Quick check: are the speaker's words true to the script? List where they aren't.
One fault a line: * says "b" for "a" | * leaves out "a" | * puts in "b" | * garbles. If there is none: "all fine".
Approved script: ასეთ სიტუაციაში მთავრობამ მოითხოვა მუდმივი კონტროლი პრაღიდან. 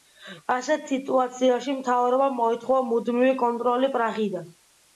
all fine